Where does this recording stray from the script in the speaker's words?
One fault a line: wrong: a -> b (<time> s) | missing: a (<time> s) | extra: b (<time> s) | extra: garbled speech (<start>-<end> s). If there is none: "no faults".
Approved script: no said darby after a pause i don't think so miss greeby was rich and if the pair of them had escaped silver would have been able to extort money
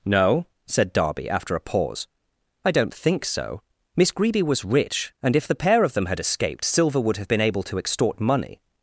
no faults